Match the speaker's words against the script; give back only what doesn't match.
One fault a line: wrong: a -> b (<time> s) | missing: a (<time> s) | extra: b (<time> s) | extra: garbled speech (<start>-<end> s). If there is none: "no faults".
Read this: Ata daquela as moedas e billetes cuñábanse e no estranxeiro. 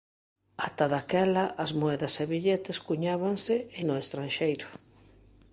no faults